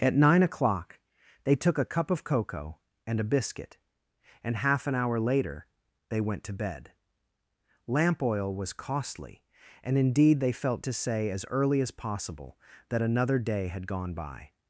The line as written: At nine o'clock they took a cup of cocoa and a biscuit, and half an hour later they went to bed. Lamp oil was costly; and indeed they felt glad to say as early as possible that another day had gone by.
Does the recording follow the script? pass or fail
fail